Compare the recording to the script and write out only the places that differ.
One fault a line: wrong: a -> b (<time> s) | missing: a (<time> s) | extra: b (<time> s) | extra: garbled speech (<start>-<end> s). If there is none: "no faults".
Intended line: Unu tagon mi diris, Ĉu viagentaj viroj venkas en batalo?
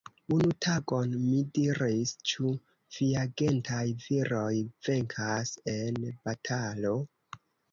no faults